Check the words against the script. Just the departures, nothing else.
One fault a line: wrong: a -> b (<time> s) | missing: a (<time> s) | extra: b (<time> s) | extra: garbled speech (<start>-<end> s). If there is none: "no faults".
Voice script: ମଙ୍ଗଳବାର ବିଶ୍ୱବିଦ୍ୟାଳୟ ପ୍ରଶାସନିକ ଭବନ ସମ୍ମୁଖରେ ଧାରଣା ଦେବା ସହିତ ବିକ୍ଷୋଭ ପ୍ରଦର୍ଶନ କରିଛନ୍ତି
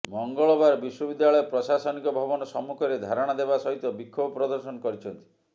no faults